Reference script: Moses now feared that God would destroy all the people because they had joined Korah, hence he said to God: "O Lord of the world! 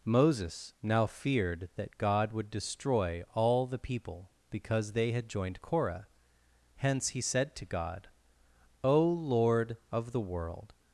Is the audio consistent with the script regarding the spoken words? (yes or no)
yes